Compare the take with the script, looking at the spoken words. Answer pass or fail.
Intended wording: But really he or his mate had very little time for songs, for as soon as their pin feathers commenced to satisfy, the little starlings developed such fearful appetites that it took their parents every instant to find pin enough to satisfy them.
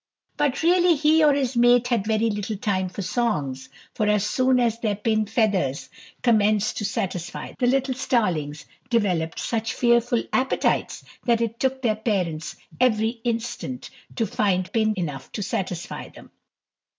pass